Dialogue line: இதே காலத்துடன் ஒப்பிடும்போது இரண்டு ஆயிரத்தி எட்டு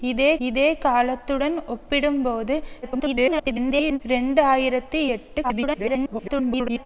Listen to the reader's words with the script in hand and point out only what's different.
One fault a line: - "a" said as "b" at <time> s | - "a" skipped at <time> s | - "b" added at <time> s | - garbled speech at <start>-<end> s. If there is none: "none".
- "இதே" added at 0.4 s
- garbled speech at 2.8-4.0 s
- garbled speech at 5.4-6.9 s